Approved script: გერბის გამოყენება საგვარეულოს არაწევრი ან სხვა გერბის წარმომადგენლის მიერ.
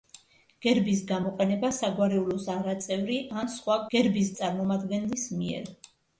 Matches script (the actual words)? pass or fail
pass